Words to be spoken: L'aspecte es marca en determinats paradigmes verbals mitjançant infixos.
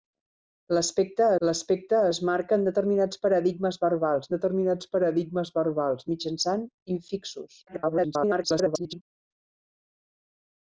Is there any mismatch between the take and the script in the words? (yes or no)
yes